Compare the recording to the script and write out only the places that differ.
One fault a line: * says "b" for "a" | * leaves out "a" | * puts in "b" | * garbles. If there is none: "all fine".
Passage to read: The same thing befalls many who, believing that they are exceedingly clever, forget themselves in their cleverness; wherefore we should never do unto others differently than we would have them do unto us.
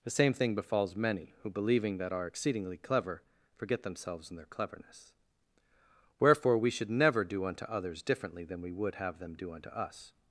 * leaves out "they"